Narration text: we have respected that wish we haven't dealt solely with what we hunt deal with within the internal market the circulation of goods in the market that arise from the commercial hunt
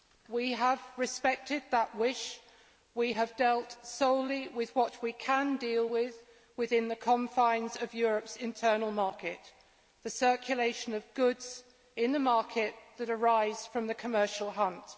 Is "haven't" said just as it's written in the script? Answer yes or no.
no